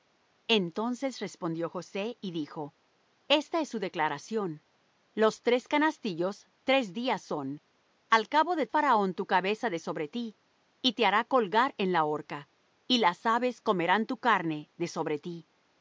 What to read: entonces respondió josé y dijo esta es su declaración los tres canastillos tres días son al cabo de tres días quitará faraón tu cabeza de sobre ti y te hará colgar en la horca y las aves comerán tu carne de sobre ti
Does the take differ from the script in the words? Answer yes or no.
yes